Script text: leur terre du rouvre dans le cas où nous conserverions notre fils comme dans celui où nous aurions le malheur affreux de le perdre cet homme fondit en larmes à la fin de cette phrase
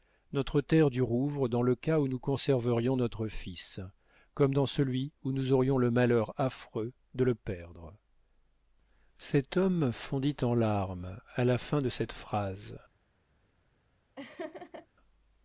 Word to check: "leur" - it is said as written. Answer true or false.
false